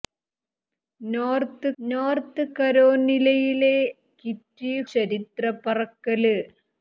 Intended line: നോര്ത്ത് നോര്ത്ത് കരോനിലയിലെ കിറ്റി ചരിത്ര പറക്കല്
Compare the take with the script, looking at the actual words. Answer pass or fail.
pass